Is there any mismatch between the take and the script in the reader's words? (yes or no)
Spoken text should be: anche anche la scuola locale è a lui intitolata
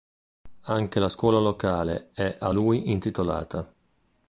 yes